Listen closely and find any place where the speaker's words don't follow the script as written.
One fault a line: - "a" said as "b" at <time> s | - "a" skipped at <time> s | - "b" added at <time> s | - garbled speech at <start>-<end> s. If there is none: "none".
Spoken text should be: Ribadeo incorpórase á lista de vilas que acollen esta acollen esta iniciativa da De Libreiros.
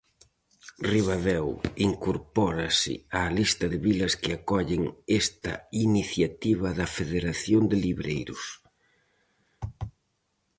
- "acollen esta" skipped at 5.5 s
- "Federación" added at 7.0 s